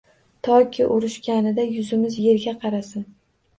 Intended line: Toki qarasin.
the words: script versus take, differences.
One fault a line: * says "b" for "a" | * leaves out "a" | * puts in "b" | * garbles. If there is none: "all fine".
* puts in "urishganida yuzimiz yerga"